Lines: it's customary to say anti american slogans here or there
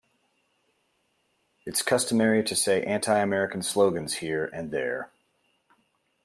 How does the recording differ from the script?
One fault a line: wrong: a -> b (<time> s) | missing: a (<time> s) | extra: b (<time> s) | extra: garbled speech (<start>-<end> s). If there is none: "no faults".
wrong: or -> and (4.5 s)